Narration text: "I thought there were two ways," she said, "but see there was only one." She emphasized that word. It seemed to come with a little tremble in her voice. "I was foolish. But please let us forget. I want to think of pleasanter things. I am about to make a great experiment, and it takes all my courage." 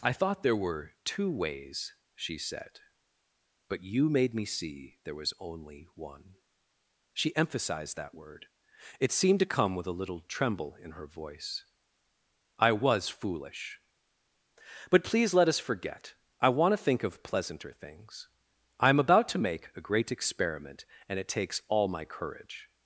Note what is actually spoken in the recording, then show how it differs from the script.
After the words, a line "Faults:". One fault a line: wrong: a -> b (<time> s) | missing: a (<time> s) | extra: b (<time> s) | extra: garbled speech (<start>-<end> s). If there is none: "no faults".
"I thought there were two ways," she said, "but you made me see there was only one." She emphasized that word. It seemed to come with a little tremble in her voice. "I was foolish. But please let us forget. I want to think of pleasanter things. I am about to make a great experiment, and it takes all my courage."
Faults:
extra: you made me (3.8 s)